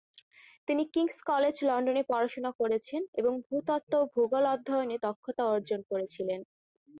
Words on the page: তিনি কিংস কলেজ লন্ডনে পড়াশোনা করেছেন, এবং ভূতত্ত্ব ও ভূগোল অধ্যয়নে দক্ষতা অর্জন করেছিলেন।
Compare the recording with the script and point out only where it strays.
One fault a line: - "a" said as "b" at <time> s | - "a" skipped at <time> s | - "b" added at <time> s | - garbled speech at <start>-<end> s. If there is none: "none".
none